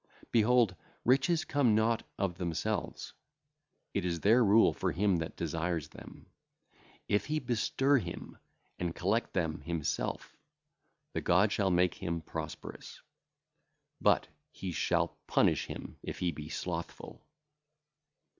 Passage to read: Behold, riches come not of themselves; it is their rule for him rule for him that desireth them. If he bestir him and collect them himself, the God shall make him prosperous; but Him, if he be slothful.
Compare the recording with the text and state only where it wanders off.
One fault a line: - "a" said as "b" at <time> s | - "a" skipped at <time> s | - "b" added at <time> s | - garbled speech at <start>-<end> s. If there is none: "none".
- "rule for him" skipped at 5.2 s
- "He shall punish" added at 14.5 s